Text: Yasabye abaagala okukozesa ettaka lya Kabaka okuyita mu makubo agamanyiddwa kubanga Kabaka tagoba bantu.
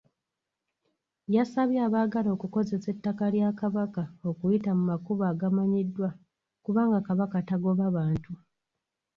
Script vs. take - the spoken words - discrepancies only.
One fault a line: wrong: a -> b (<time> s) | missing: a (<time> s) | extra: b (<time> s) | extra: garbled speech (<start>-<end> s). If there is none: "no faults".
no faults